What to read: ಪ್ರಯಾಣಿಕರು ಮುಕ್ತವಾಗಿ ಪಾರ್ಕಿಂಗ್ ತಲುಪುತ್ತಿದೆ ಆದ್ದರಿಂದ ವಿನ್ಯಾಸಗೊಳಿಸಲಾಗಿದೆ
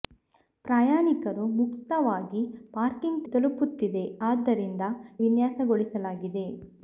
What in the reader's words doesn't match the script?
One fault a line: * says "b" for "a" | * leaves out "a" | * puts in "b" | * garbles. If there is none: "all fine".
all fine